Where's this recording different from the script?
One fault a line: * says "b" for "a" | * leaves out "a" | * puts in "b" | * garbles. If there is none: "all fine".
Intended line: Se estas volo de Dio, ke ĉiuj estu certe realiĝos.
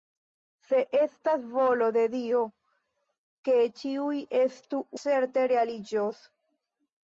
all fine